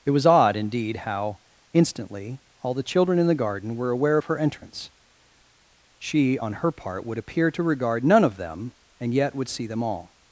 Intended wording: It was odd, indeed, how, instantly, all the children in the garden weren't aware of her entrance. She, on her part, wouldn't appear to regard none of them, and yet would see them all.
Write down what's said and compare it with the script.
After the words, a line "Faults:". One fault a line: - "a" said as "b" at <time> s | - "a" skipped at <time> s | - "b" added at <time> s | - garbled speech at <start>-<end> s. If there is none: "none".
It was odd, indeed, how, instantly, all the children in the garden were aware of her entrance. She, on her part, would appear to regard none of them, and yet would see them all.
Faults:
- "weren't" said as "were" at 3.8 s
- "wouldn't" said as "would" at 7.1 s